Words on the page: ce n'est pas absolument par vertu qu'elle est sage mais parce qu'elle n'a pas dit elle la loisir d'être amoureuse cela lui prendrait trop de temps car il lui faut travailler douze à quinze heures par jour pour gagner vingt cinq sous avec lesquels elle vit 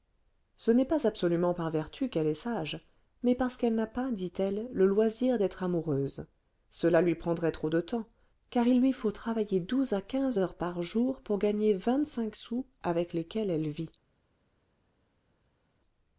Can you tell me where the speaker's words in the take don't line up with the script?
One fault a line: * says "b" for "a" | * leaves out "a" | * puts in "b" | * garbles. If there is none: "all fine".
* says "le" for "la"